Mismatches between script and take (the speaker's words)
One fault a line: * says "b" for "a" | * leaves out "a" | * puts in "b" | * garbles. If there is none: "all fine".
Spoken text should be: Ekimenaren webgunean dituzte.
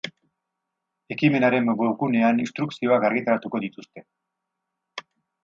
* puts in "instrukzioak argitaratuko"